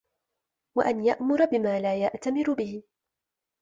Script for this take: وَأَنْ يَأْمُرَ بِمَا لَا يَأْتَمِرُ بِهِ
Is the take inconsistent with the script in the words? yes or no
no